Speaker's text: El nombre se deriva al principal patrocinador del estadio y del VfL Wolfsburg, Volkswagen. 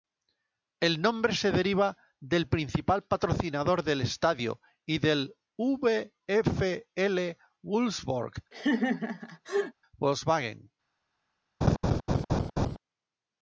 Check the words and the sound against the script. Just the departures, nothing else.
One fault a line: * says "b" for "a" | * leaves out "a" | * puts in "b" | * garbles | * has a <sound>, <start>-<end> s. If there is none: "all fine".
* says "del" for "al"
* has a laugh, 8.5-9.7 s
* has a laugh, 11.6-12.8 s